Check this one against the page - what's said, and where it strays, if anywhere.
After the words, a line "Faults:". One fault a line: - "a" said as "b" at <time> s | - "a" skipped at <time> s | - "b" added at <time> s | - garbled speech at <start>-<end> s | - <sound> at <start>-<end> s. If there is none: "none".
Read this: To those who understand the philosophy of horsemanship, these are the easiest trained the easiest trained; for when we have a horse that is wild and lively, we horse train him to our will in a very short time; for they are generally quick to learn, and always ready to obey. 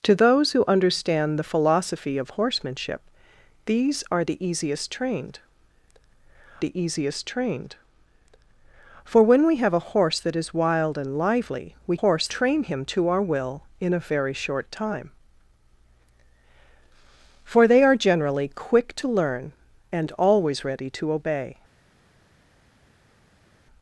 To those who understand the philosophy of horsemanship, these are the easiest trained the easiest trained; for when we have a horse that is wild and lively, we horse train him to our will in a very short time; for they are generally quick to learn, and always ready to obey.
Faults:
none